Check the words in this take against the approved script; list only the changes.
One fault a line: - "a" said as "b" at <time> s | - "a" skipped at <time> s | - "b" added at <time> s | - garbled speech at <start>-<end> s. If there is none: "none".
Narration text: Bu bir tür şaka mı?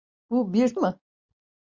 - "tür şaka" skipped at 0.8 s